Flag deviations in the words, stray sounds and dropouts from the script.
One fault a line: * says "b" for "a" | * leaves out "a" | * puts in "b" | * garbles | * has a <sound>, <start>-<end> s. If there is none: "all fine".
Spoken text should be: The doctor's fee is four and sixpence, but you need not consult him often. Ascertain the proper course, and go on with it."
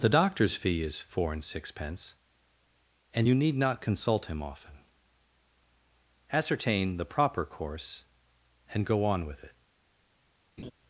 * says "and" for "but"
* has a laugh, 10.6-10.7 s